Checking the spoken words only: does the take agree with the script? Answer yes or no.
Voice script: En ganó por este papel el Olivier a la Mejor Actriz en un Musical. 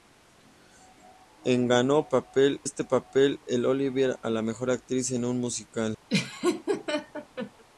no